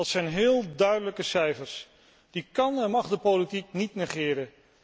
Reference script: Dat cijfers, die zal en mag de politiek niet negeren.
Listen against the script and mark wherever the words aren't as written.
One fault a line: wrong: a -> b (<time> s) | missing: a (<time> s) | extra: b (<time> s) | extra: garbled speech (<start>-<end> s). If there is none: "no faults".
extra: zijn heel duidelijke (0.1 s)
wrong: zal -> kan (2.5 s)